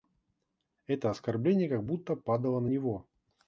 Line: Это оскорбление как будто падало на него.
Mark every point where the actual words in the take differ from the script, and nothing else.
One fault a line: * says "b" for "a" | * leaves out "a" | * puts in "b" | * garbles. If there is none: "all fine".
all fine